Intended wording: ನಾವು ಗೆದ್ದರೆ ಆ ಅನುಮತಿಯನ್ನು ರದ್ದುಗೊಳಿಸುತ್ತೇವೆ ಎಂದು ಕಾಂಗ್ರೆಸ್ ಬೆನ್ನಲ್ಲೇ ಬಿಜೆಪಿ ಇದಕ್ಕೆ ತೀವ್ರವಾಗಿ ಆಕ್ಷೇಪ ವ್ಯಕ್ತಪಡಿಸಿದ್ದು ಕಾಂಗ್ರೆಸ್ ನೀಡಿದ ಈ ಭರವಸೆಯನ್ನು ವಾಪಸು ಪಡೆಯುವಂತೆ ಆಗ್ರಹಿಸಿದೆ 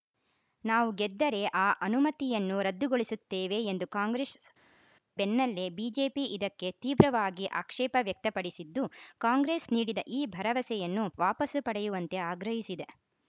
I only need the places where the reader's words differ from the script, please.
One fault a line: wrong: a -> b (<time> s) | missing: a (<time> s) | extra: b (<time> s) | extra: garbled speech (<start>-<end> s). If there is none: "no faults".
no faults